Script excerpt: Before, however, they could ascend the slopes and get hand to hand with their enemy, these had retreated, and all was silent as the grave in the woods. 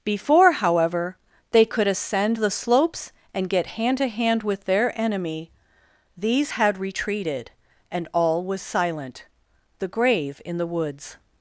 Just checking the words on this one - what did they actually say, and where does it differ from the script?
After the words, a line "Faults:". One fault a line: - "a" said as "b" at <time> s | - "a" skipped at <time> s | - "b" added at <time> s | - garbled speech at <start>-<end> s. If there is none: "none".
Before, however, they could ascend the slopes and get hand to hand with their enemy, these had retreated, and all was silent the grave in the woods.
Faults:
- "as" skipped at 9.2 s